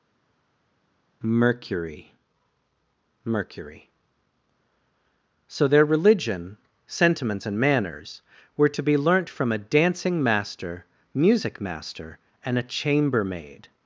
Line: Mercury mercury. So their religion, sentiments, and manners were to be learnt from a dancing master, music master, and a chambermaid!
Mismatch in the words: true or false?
false